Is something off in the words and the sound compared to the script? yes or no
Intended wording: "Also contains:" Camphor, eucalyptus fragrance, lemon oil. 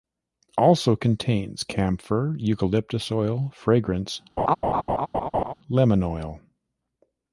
yes